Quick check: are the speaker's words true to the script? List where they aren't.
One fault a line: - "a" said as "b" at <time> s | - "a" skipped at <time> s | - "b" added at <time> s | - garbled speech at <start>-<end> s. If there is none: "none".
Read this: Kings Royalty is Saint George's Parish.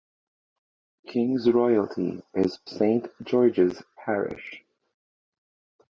none